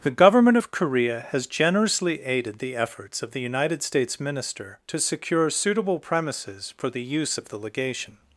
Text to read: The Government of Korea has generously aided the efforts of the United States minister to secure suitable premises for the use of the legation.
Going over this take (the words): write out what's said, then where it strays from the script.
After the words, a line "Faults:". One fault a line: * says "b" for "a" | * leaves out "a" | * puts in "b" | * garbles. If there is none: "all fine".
The Government of Korea has generously aided the efforts of the United States minister to secure suitable premises for the use of the legation.
Faults:
all fine